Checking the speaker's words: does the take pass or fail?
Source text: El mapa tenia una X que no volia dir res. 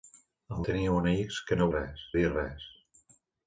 fail